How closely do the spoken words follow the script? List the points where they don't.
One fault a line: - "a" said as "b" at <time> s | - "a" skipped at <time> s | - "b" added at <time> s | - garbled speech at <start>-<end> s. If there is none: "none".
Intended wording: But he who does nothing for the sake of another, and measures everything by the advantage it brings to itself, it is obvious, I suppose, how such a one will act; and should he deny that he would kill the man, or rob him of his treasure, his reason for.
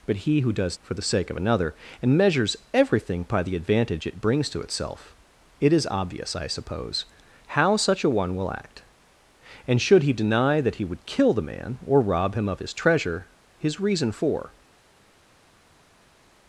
- "nothing" skipped at 0.8 s